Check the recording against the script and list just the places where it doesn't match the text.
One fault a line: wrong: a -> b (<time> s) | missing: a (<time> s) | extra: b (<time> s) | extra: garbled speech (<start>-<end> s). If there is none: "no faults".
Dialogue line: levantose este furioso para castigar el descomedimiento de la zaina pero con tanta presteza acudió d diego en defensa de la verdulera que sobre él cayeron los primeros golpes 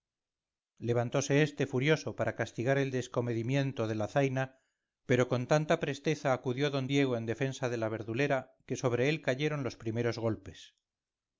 no faults